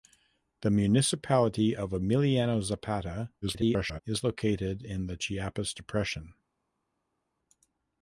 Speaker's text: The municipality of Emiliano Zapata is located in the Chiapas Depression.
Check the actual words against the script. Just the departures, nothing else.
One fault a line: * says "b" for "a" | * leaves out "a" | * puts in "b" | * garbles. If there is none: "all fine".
* garbles